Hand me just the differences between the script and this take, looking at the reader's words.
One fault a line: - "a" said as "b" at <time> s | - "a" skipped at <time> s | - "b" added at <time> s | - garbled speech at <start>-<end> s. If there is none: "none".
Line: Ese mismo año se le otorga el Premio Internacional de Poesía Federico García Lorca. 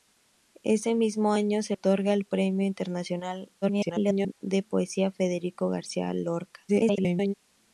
- "le" skipped at 1.8 s
- garbled speech at 3.6-4.3 s
- garbled speech at 6.7-7.3 s